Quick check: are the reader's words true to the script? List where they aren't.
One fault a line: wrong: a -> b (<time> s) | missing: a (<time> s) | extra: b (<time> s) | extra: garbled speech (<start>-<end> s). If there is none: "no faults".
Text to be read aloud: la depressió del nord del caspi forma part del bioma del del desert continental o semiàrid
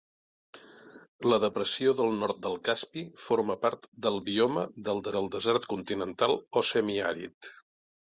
no faults